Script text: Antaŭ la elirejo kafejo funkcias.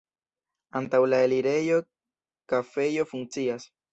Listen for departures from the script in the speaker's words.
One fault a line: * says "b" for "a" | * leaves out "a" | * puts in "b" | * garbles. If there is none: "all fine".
all fine